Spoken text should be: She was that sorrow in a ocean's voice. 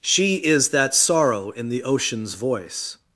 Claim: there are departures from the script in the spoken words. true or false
true